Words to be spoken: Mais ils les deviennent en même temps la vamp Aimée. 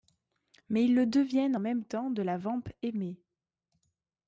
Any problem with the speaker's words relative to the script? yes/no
yes